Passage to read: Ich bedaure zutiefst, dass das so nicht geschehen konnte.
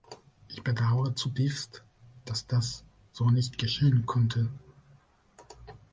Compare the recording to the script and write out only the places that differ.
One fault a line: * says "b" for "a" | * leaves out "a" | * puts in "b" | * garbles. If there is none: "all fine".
all fine